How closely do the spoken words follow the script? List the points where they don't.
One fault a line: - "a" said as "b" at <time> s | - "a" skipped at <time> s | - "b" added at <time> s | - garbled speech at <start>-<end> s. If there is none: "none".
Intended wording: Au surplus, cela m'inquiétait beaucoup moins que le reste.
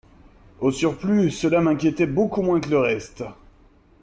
none